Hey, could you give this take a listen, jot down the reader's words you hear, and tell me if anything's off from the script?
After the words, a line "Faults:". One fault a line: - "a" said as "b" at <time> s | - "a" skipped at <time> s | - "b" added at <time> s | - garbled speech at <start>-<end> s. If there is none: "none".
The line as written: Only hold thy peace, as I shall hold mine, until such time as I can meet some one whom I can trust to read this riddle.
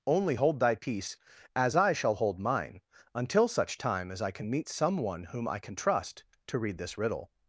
Only hold thy peace, as I shall hold mine, until such time as I can meet some one whom I can trust to read this riddle.
Faults:
none